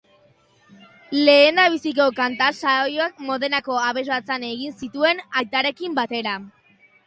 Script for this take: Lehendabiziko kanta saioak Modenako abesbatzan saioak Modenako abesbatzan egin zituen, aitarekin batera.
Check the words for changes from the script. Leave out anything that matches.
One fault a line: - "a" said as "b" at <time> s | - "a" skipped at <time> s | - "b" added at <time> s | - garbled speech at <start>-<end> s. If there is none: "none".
- "saioak Modenako abesbatzan" skipped at 4.5 s